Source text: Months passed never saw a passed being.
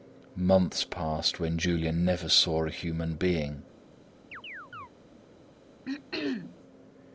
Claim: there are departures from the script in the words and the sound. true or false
true